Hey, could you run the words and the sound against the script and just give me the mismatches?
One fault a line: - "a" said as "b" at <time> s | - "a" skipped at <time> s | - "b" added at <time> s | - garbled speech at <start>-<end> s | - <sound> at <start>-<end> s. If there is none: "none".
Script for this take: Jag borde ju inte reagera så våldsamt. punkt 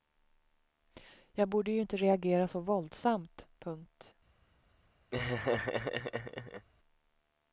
- laugh at 5.1-6.7 s